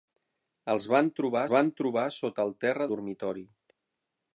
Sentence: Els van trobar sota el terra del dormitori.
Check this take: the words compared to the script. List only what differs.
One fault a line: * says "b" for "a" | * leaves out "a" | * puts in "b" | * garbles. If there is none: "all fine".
* puts in "van trobar"
* leaves out "del"